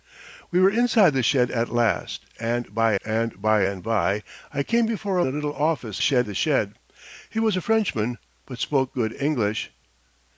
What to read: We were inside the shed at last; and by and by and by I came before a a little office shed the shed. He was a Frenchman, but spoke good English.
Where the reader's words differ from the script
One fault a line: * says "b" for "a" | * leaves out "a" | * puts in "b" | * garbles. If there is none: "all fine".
all fine